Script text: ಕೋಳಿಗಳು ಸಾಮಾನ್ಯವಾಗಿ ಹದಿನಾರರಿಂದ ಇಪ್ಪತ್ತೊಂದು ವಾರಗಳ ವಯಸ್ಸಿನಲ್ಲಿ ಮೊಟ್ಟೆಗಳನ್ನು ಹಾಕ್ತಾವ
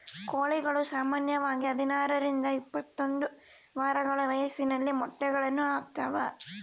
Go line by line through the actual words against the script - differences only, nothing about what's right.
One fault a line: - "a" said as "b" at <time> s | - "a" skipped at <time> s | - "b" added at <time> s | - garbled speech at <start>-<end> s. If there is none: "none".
none